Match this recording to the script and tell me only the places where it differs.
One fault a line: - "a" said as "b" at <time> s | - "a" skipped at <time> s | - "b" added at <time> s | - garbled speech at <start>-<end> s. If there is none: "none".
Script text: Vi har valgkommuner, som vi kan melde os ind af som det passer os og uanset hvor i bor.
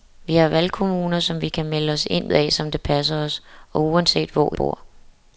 none